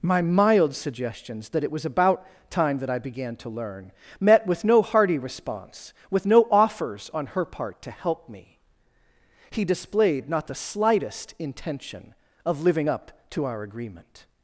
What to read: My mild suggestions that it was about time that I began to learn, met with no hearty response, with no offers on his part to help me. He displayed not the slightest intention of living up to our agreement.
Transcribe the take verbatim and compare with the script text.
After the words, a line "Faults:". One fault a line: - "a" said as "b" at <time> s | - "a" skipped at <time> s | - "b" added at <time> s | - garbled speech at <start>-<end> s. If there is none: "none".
My mild suggestions that it was about time that I began to learn, met with no hearty response, with no offers on her part to help me. He displayed not the slightest intention of living up to our agreement.
Faults:
- "his" said as "her" at 7.3 s